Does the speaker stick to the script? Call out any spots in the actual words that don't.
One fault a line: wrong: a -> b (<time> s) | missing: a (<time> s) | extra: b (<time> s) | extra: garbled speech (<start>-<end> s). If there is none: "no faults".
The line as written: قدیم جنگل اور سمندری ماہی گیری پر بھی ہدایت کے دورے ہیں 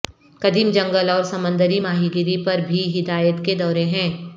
no faults